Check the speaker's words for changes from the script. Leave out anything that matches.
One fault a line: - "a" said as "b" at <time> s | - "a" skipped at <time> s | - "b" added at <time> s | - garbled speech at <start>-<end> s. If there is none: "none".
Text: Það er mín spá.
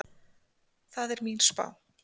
none